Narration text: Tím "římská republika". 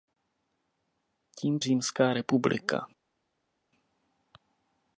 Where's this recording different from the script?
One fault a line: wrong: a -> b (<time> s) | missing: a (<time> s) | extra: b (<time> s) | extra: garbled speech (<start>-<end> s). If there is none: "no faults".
no faults